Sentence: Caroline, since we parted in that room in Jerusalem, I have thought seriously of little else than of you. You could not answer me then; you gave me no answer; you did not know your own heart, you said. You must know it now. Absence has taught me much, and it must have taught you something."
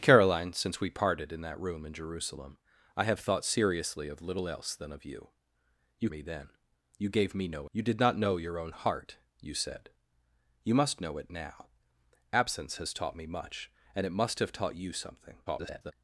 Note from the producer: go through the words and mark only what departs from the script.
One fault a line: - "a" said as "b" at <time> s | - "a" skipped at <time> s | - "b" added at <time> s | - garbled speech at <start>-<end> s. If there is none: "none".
- "could not answer" skipped at 6.1 s
- "answer" skipped at 7.7 s
- garbled speech at 15.5-15.9 s